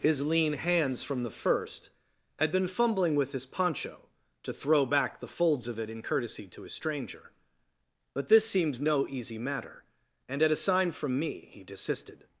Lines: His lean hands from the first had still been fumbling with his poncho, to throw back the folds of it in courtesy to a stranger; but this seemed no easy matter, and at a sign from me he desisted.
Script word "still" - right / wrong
wrong